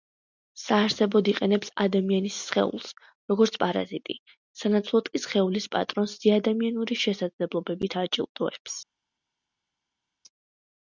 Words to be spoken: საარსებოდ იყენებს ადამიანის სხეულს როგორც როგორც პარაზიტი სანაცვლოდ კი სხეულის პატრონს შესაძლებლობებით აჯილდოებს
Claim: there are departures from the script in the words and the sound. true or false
true